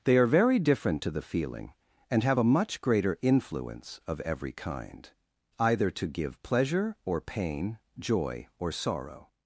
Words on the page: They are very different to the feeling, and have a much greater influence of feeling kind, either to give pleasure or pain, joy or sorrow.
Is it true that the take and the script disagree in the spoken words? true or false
true